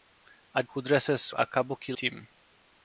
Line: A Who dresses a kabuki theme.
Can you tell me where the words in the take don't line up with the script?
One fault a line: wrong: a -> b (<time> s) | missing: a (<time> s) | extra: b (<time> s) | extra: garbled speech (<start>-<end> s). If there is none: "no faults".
no faults